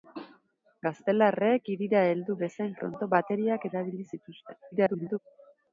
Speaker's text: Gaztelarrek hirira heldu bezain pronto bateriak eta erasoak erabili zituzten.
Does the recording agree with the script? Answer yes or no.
no